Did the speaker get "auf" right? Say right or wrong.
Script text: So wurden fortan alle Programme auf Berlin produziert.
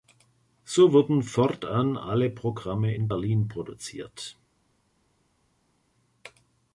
wrong